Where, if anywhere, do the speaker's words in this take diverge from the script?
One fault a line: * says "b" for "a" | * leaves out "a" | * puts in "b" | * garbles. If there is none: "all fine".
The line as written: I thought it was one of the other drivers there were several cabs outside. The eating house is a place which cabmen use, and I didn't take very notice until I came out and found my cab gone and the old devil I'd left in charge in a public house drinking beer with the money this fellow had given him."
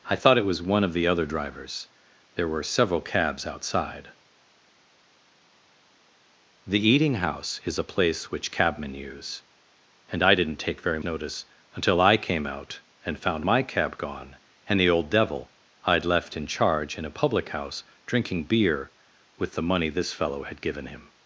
all fine